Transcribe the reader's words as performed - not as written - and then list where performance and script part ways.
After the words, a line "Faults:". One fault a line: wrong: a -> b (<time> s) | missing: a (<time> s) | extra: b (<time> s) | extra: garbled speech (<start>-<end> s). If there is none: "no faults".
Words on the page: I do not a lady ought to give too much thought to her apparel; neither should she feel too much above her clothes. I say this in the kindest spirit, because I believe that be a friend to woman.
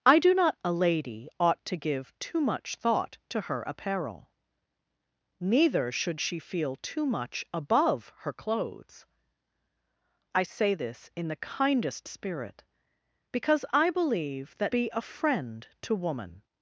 I do not a lady ought to give too much thought to her apparel; neither should she feel too much above her clothes. I say this in the kindest spirit, because I believe that be a friend to woman.
Faults:
no faults